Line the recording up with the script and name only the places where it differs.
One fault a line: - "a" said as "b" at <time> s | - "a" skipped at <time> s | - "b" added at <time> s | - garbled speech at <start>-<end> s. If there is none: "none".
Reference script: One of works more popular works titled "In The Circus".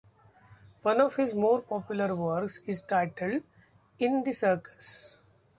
- "works" said as "his" at 1.2 s
- "is" added at 2.7 s